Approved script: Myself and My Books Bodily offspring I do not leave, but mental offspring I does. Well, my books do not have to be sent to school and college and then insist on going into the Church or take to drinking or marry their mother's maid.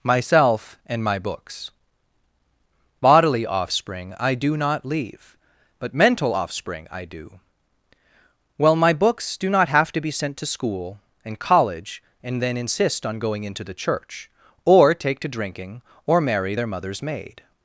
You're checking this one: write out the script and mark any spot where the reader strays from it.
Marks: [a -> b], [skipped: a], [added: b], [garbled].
Myself and My Books Bodily offspring I do not leave, but mental offspring I [does. -> do] Well, my books do not have to be sent to school and college and then insist on going into the Church or take to drinking or marry their mother's maid.